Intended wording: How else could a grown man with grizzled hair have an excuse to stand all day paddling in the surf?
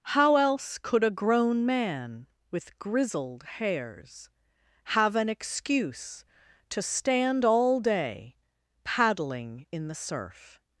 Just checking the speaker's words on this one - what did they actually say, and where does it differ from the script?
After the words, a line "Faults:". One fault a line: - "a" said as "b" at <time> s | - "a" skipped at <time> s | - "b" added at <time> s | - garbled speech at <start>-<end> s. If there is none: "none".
How else could a grown man with grizzled hairs have an excuse to stand all day paddling in the surf?
Faults:
- "hair" said as "hairs" at 3.4 s